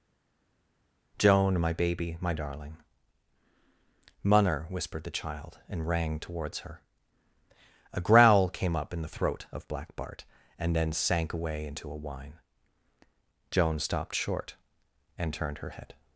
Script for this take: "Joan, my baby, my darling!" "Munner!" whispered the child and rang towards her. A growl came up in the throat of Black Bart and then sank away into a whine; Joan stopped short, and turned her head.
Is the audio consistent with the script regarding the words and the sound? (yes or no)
yes